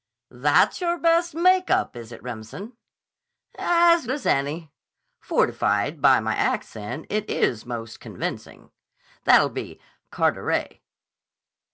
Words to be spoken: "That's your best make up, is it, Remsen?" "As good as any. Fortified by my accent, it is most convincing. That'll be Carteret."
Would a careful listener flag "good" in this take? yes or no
yes